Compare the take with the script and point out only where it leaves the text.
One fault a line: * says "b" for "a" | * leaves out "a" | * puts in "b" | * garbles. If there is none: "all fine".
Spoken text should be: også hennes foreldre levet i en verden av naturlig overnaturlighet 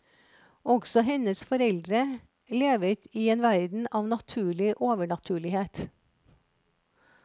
all fine